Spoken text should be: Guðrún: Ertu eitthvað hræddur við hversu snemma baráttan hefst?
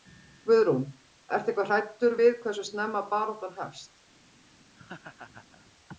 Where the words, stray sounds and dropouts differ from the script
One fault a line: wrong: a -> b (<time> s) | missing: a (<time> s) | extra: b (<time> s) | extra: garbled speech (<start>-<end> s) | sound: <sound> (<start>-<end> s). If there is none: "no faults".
sound: laugh (4.8-5.7 s)